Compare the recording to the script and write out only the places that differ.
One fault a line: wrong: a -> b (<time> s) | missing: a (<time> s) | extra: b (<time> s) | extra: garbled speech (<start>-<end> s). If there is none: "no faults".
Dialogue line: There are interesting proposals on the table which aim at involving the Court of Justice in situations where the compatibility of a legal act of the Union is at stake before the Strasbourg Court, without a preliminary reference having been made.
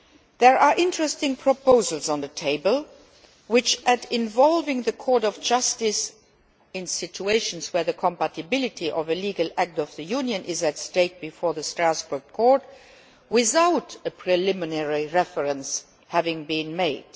missing: aim (3.8 s)